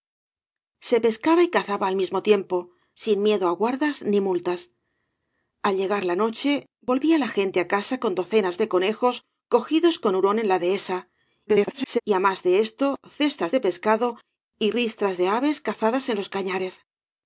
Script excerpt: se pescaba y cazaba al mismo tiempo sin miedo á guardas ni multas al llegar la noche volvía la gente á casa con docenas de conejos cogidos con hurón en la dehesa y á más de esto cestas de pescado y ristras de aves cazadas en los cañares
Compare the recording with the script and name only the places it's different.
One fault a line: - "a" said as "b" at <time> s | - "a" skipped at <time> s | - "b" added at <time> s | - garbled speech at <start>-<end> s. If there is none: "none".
- garbled speech at 11.5-12.0 s